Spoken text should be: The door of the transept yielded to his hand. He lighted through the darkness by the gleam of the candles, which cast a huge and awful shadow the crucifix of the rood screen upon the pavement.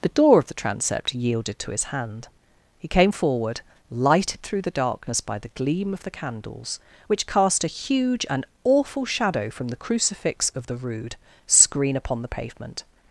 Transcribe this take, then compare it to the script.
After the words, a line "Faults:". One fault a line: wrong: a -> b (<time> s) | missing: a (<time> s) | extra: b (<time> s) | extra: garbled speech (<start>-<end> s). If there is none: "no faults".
The door of the transept yielded to his hand. He came forward, lighted through the darkness by the gleam of the candles, which cast a huge and awful shadow from the crucifix of the rood screen upon the pavement.
Faults:
extra: came forward (2.9 s)
extra: from (9.5 s)